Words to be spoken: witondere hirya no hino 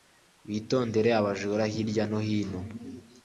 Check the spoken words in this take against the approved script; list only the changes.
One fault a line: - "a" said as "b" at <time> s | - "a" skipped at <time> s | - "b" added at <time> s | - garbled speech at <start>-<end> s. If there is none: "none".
- "abajura" added at 1.2 s